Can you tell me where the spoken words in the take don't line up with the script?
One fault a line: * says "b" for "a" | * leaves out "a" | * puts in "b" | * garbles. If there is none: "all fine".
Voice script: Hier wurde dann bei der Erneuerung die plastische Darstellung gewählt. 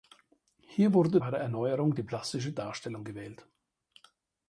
* leaves out "dann"